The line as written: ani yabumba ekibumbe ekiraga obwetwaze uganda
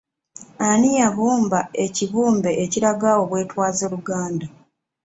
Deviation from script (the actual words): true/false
false